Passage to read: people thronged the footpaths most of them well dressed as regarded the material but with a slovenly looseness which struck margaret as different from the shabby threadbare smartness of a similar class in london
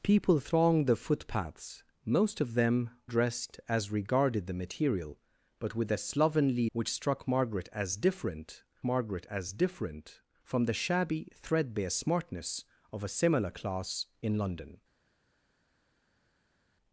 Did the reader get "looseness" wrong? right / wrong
wrong